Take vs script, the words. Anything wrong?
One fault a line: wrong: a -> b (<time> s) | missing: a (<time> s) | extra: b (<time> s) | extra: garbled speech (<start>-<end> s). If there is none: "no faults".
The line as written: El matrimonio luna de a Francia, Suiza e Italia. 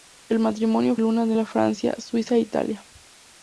no faults